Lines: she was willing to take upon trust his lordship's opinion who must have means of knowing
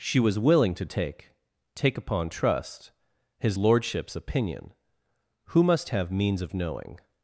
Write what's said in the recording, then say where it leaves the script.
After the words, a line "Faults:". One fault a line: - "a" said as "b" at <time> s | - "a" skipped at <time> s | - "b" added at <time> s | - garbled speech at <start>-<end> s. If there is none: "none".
she was willing to take take upon trust his lordship's opinion who must have means of knowing
Faults:
- "take" added at 1.8 s